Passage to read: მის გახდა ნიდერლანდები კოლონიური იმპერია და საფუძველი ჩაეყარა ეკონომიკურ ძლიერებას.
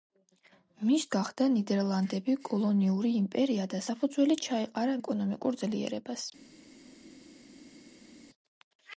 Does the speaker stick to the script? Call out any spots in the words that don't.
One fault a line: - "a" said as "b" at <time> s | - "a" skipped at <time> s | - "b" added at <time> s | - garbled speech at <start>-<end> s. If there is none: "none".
none